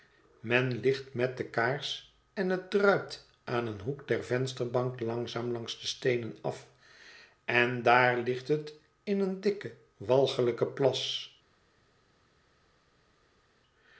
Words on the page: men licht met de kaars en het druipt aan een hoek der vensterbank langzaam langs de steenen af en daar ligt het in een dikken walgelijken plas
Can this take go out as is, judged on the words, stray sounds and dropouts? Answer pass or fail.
pass